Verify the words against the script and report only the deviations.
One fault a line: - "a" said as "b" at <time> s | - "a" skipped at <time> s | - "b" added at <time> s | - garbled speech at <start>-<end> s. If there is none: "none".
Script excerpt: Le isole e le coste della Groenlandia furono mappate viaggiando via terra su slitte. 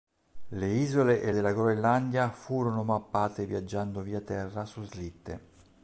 - "le coste" skipped at 1.3 s